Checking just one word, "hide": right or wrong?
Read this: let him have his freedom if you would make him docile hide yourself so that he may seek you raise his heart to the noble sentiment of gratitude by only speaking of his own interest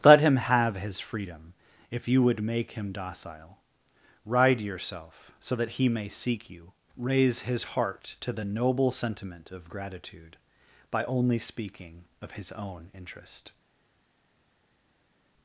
wrong